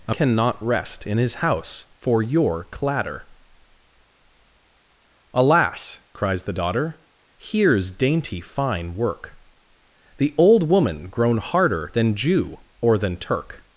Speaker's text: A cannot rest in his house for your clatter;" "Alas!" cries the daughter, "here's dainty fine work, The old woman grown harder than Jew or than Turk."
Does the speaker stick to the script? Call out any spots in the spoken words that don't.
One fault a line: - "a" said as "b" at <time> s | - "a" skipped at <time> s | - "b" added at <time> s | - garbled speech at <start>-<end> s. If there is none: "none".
none